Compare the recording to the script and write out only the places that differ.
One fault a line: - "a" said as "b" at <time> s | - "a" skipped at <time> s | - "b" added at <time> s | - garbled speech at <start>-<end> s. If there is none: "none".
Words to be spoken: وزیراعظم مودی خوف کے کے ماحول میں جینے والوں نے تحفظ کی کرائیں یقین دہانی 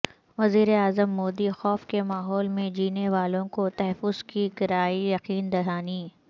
- "کے" skipped at 2.0 s
- "نے" said as "کو" at 3.5 s